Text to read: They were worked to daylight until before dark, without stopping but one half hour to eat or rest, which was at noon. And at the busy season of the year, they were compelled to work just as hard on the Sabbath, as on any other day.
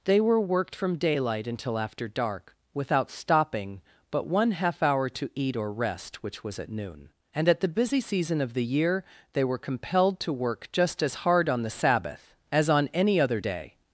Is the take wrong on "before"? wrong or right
wrong